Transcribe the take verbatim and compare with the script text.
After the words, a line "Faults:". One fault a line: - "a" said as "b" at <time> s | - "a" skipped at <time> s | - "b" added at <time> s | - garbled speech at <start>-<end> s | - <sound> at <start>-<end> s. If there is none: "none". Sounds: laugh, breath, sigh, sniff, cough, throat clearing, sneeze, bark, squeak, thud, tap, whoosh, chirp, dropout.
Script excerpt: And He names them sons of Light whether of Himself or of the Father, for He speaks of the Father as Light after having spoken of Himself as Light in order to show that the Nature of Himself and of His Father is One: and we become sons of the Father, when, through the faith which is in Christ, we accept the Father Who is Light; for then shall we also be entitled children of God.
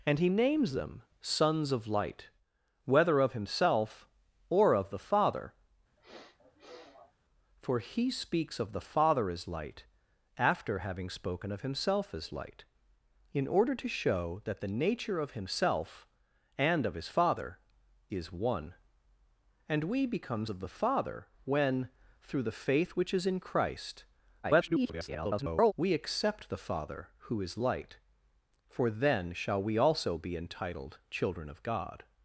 And He names them sons of Light whether of Himself or of the Father, for He speaks of the Father as Light after having spoken of Himself as Light in order to show that the Nature of Himself and of His Father is One: and we become of the Father, when, through the faith which is in Christ, [garbled] we accept the Father Who is Light; for then shall we also be entitled children of God.
Faults:
- sniff at 6.0-7.1 s
- "sons" skipped at 20.5 s
- garbled speech at 24.4-25.7 s